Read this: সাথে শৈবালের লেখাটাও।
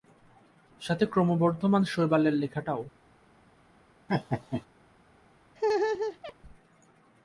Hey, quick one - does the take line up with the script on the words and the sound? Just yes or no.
no